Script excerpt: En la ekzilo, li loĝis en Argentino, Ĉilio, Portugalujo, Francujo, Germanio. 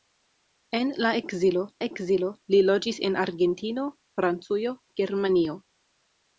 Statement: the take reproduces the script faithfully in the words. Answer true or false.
false